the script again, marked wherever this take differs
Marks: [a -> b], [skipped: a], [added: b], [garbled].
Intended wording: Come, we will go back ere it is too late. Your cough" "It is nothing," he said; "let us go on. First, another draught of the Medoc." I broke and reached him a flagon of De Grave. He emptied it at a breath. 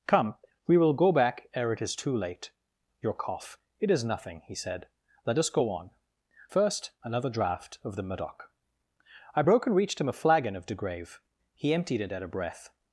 Come, we will go back ere it is too late. Your cough" "It is nothing," he said; "let us go on. First, another draught of the Medoc." I broke and reached him a flagon of De Grave. He emptied it at a breath.